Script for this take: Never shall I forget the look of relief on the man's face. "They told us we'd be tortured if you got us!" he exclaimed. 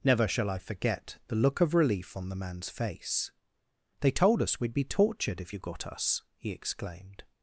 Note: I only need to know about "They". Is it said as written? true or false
true